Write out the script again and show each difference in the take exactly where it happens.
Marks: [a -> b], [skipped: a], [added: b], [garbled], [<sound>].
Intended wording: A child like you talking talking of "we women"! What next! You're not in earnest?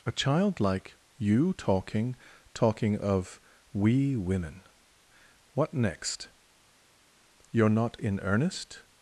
A child like you talking talking of "we women"! What next! You're not in earnest?